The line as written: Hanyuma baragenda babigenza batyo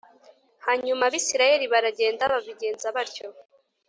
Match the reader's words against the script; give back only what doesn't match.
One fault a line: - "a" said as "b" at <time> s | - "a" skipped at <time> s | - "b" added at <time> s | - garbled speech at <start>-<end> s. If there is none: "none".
- "abisirayeli" added at 1.1 s